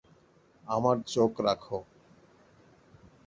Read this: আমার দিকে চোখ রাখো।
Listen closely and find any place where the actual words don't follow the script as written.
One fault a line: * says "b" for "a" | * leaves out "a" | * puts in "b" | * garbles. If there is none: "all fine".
* leaves out "দিকে"